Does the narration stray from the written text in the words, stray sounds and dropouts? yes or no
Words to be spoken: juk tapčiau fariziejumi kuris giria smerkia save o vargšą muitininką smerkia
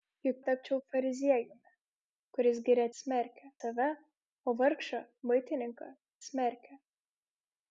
no